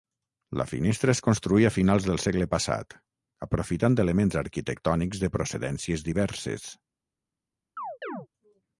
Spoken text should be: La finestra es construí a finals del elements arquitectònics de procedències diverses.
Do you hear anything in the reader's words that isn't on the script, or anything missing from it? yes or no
yes